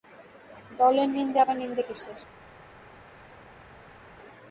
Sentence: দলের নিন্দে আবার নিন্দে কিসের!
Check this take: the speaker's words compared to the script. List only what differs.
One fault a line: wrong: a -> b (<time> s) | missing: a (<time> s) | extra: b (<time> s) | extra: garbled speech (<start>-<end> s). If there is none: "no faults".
no faults